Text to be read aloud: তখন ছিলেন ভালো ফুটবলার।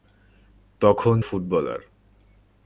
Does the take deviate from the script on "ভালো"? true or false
true